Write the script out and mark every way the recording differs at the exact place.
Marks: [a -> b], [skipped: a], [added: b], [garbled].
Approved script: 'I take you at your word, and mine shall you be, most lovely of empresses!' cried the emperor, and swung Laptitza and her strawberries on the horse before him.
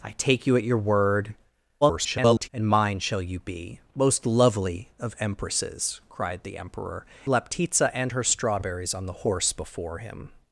'I take you at your word, [garbled] and mine shall you be, most lovely of empresses!' cried the emperor, [skipped: and swung] Laptitza and her strawberries on the horse before him.